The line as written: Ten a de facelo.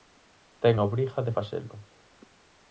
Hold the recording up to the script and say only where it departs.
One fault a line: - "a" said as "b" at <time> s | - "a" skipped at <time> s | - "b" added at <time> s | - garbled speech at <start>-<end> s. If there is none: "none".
- "obriga" added at 0.9 s